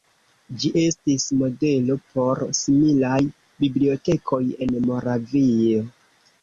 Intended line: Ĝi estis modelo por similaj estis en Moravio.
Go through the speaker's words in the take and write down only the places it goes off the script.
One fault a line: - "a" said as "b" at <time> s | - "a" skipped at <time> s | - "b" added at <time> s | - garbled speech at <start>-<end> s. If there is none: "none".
- "estis" said as "bibliotekoj" at 3.7 s